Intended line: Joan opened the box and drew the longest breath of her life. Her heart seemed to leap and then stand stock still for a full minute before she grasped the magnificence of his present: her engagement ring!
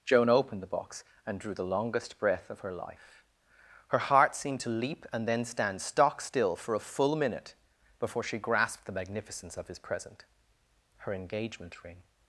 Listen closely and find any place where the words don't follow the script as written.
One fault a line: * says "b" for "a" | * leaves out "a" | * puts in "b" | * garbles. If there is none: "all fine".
all fine